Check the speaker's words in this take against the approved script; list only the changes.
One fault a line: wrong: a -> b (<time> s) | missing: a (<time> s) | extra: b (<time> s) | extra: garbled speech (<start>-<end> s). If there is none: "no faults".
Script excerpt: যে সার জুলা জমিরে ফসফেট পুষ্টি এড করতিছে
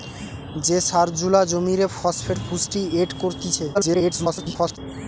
extra: garbled speech (3.7-4.8 s)